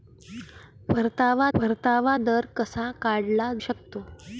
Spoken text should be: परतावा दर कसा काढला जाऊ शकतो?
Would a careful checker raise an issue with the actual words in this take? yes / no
yes